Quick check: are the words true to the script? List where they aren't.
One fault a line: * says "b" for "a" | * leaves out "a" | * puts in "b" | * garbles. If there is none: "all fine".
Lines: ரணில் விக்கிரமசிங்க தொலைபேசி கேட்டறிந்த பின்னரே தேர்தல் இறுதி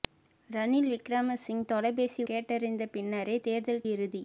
all fine